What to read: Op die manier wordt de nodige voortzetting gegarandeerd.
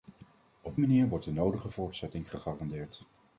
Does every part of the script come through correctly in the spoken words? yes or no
no